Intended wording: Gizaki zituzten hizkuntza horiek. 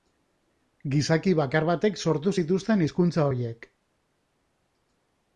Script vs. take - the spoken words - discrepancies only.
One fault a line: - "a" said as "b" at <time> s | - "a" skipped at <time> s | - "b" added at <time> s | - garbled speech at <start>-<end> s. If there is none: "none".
- "bakar batek sortu" added at 1.4 s